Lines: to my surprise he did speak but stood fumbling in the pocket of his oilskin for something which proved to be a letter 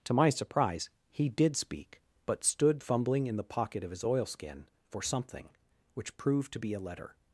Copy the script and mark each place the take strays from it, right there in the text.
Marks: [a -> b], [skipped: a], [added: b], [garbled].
to my surprise he did speak but stood fumbling in the pocket of his oilskin for something which proved to be a letter